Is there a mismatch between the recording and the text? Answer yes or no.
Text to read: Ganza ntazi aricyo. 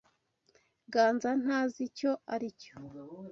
yes